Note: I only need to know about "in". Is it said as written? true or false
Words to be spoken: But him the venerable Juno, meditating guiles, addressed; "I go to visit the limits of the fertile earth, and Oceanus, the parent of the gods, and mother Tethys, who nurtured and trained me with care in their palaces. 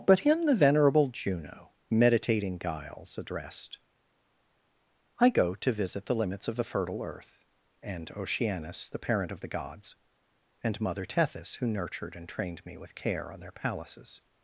false